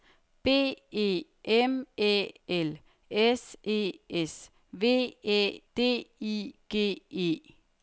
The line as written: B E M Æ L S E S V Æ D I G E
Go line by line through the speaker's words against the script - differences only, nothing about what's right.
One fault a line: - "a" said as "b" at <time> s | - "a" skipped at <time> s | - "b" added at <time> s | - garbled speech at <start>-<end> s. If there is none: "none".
none